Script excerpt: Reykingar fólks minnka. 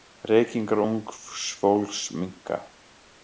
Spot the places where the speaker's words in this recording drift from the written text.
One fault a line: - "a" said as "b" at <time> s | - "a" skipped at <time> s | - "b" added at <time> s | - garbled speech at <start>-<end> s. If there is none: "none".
- "ungs" added at 0.8 s